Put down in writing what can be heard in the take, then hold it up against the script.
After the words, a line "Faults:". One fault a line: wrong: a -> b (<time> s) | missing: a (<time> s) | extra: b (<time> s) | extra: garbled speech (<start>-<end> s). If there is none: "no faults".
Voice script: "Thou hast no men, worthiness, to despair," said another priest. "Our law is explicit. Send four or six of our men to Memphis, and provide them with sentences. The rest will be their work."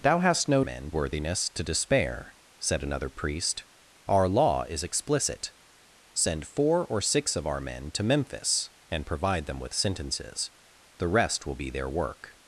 "Thou hast no men, worthiness, to despair," said another priest. "Our law is explicit. Send four or six of our men to Memphis, and provide them with sentences. The rest will be their work."
Faults:
no faults